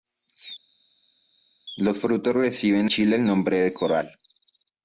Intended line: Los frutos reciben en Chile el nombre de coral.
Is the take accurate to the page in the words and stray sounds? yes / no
no